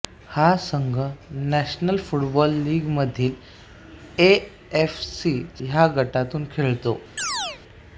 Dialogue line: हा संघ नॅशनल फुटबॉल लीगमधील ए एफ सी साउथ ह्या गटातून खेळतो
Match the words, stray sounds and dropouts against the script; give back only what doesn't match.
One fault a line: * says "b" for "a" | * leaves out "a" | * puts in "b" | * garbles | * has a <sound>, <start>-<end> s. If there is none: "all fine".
* leaves out "साउथ"
* has a chirp, 7.2-7.6 s